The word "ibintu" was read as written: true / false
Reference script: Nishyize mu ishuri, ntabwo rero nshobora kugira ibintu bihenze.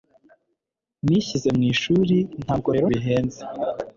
false